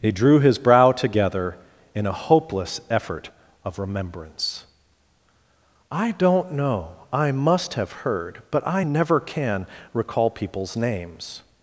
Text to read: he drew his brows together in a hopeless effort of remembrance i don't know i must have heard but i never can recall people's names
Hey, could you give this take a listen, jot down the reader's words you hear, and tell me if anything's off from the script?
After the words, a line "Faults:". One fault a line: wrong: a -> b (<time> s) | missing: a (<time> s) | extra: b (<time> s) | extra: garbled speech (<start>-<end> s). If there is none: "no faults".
he drew his brow together in a hopeless effort of remembrance i don't know i must have heard but i never can recall people's names
Faults:
wrong: brows -> brow (0.6 s)